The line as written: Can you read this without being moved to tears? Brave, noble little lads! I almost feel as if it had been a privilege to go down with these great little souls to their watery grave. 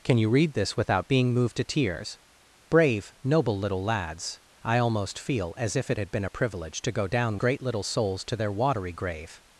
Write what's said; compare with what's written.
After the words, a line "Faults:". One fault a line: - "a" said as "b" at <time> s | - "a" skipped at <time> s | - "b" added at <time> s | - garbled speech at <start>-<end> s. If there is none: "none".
Can you read this without being moved to tears? Brave, noble little lads! I almost feel as if it had been a privilege to go down great little souls to their watery grave.
Faults:
- "with these" skipped at 7.4 s